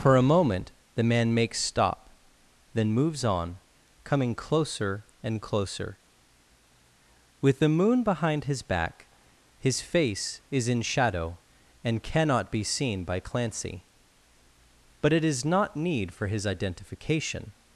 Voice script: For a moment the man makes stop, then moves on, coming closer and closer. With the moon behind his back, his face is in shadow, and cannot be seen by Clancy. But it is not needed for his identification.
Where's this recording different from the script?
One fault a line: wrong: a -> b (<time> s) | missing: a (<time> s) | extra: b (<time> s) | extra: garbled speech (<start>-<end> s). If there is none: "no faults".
wrong: needed -> need (15.8 s)